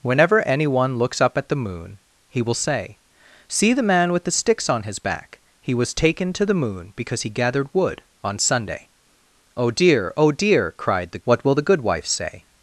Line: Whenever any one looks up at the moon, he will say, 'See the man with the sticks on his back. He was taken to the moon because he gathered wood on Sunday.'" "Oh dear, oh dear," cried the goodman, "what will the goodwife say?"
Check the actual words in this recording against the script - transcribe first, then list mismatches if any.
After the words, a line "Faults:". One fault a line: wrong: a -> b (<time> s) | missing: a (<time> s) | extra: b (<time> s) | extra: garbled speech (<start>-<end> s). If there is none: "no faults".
Whenever any one looks up at the moon, he will say, 'See the man with the sticks on his back. He was taken to the moon because he gathered wood on Sunday.'" "Oh dear, oh dear," cried the "what will the goodwife say?"
Faults:
missing: goodman (11.2 s)